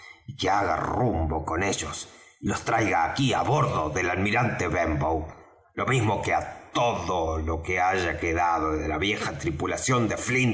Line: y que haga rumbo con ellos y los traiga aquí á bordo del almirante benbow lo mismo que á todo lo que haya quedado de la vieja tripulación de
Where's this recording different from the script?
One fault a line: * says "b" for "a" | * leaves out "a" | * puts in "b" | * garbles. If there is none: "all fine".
all fine